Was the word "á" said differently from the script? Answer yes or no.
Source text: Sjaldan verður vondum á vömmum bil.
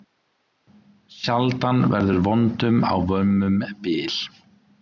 no